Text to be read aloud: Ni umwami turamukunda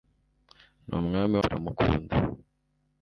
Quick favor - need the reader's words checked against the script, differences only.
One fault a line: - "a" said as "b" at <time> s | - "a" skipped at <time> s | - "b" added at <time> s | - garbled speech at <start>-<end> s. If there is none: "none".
none